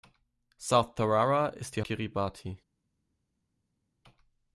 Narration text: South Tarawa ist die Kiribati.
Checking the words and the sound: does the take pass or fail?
pass